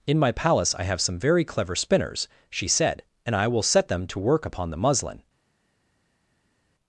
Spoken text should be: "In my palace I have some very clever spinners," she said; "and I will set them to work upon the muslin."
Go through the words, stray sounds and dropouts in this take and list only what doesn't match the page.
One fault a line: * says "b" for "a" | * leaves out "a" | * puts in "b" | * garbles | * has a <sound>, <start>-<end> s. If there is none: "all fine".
all fine